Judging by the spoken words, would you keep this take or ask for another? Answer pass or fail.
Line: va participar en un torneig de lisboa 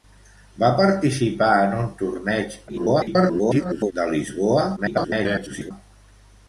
fail